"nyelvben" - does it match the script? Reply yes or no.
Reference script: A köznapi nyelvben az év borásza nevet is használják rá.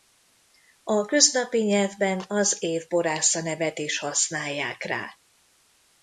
yes